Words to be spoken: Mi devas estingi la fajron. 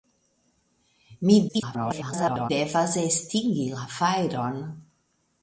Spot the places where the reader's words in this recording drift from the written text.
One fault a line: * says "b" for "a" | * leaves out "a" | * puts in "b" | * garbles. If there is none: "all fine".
* garbles